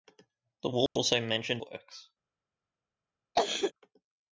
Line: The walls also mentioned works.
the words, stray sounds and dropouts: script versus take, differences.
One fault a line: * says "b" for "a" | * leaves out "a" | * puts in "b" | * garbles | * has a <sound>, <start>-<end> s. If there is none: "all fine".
* has a dropout, 0.9-1.0 s
* has a cough, 3.4-3.7 s